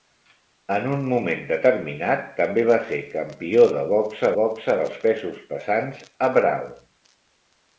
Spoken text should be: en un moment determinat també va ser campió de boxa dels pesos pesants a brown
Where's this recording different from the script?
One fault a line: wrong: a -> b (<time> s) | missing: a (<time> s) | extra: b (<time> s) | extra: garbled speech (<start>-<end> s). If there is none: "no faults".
extra: boxa (4.4 s)